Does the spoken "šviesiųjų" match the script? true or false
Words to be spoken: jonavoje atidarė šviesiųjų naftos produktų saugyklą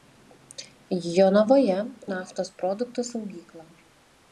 false